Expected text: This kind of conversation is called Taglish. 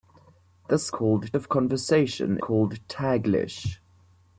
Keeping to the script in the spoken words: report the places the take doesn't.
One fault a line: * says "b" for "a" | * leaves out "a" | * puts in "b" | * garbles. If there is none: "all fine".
* says "called" for "kind"
* leaves out "is"